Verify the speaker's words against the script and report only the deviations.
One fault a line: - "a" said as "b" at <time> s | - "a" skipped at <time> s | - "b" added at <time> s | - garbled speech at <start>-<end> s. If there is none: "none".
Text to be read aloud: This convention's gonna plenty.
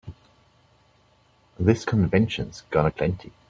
none